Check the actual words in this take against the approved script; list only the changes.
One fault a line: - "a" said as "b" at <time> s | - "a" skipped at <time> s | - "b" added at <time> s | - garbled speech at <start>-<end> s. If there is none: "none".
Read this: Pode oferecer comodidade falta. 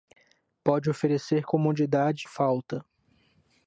none